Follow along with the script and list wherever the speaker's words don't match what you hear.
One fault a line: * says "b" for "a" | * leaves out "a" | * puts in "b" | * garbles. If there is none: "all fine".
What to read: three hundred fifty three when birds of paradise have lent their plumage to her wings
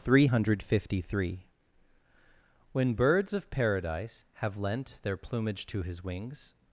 * says "his" for "her"